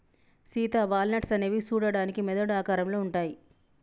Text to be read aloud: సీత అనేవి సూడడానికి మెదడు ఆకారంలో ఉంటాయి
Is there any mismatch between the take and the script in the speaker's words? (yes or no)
yes